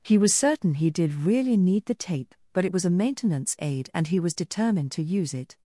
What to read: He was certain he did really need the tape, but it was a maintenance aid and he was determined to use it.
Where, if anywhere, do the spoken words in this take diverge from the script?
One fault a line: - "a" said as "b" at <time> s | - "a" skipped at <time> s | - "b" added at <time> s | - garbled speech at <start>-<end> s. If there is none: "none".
none